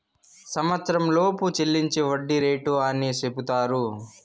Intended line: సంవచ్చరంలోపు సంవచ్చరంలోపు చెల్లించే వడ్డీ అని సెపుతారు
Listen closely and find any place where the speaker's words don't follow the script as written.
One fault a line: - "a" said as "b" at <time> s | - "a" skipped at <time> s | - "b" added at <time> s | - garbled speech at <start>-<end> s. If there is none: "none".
- "సంవచ్చరంలోపు" skipped at 1.4 s
- "రేటు" added at 2.4 s